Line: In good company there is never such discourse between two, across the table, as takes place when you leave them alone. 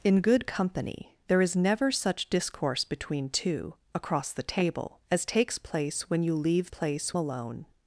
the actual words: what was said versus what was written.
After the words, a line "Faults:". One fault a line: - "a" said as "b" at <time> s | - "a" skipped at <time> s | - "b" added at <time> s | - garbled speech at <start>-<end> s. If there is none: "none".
In good company there is never such discourse between two, across the table, as takes place when you leave place alone.
Faults:
- "them" said as "place" at 6.7 s